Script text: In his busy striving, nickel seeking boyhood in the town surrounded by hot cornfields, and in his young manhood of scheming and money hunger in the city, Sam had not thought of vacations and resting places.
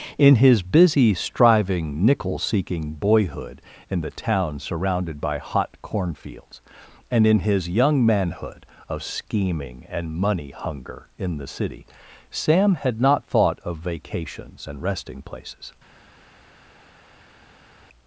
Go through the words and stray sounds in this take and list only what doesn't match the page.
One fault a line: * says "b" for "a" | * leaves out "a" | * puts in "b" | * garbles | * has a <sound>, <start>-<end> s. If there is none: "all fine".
all fine